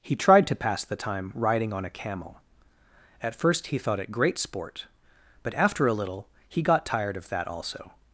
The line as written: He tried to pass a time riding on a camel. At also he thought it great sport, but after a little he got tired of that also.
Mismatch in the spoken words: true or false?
true